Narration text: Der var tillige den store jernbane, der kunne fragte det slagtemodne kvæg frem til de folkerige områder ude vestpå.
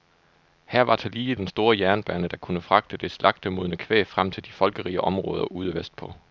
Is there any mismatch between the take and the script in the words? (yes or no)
yes